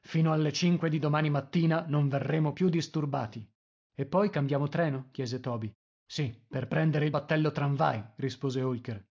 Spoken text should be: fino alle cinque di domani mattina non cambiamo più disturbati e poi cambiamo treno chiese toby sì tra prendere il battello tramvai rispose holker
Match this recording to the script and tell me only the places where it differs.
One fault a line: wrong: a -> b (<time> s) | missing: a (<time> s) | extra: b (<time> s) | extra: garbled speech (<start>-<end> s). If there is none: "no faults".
wrong: cambiamo -> verremo (2.1 s)
wrong: tra -> per (6.5 s)